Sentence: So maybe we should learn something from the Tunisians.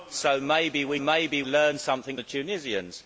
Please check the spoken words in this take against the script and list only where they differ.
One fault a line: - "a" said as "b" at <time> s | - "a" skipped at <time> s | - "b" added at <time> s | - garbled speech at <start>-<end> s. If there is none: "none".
- "should" said as "maybe" at 1.0 s
- "from" skipped at 2.2 s